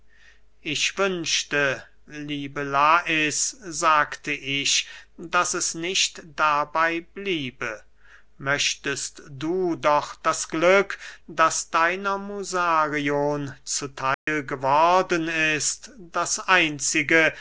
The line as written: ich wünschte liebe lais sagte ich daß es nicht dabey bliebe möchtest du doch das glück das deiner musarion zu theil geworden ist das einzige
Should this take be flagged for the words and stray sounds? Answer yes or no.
yes